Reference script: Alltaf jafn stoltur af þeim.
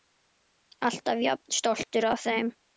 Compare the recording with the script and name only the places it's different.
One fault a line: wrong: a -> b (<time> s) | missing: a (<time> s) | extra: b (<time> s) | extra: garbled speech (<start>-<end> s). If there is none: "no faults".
no faults